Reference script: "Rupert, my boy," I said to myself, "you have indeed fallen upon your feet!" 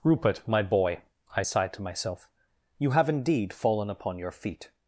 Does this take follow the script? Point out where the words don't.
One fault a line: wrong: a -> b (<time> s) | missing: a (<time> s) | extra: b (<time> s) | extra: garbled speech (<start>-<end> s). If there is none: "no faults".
wrong: said -> sighed (1.4 s)